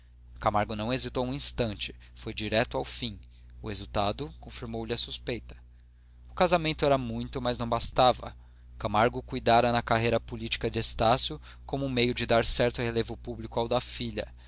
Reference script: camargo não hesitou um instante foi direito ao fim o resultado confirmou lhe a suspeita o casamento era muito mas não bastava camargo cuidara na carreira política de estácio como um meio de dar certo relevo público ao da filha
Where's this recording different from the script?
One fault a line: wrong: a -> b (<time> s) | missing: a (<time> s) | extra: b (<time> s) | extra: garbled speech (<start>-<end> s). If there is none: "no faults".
no faults